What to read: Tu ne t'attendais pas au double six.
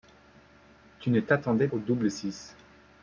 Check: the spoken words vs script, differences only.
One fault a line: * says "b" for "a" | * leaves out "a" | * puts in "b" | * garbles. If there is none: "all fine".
* leaves out "pas"